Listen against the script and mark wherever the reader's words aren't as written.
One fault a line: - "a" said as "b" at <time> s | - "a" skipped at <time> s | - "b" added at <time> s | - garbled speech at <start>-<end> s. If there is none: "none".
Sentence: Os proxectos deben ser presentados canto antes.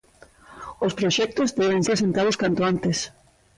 - "ser" skipped at 1.8 s